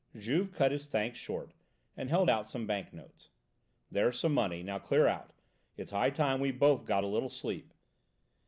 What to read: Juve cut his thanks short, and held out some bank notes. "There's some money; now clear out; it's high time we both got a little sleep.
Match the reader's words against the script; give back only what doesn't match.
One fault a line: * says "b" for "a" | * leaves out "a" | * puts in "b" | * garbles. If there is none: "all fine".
all fine